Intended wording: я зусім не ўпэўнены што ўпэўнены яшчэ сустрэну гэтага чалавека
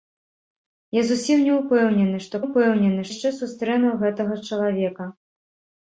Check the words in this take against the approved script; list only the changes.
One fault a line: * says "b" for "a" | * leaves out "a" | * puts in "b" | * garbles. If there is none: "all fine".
all fine